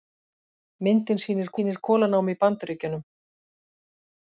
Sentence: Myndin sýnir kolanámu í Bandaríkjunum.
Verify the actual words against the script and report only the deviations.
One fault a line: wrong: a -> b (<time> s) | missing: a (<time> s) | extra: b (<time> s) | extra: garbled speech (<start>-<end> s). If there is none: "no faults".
extra: sýnir (1.6 s)